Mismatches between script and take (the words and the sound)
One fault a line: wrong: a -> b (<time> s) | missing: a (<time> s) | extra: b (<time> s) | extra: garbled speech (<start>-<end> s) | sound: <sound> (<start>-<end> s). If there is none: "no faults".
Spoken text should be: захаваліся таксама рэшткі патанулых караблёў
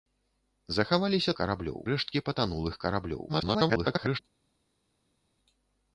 wrong: таксама -> караблёў (1.4 s)
extra: garbled speech (3.3-4.2 s)